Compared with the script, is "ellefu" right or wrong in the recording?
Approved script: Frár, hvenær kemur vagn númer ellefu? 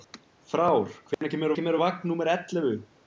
right